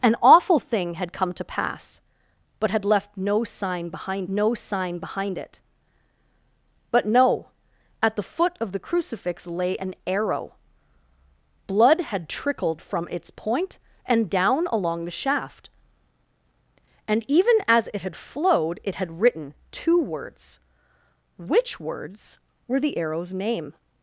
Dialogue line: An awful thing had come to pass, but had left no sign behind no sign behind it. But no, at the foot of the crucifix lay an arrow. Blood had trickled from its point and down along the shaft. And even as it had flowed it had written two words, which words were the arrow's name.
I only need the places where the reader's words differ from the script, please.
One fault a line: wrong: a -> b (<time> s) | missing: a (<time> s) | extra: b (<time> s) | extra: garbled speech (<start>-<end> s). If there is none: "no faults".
no faults